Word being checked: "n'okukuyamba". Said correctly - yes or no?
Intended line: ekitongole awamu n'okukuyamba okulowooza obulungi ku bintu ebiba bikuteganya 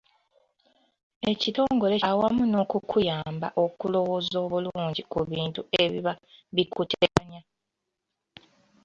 yes